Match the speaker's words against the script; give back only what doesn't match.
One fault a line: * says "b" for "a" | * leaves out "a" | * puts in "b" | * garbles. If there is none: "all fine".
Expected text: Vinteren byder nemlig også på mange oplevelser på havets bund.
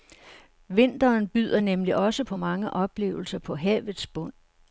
all fine